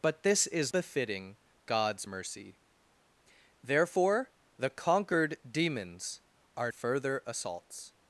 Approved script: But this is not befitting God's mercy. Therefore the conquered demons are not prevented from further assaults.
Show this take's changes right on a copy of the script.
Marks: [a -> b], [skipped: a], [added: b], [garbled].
But this is [skipped: not] befitting God's mercy. Therefore the conquered demons are [skipped: not prevented from] further assaults.